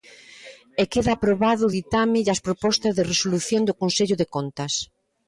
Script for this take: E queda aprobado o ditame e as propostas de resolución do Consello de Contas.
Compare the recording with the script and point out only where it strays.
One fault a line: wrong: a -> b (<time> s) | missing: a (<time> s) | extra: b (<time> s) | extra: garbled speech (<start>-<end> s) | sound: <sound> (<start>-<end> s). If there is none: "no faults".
no faults